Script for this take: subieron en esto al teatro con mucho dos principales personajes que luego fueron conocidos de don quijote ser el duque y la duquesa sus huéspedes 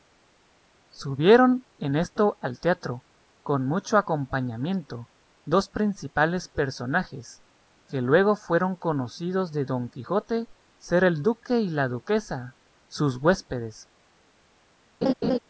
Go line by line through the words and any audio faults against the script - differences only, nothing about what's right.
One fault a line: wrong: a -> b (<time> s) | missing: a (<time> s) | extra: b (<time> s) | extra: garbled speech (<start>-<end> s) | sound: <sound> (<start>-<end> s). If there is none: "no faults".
extra: acompañamiento (4.0 s)
sound: laugh (15.0-15.4 s)